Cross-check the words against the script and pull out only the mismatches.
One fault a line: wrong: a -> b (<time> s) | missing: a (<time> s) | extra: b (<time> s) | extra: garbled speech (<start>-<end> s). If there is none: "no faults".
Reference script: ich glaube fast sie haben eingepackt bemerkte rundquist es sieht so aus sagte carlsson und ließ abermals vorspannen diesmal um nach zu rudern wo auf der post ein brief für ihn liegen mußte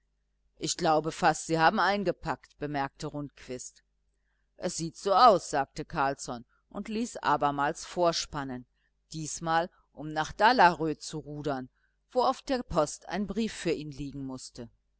extra: dalarö (10.3 s)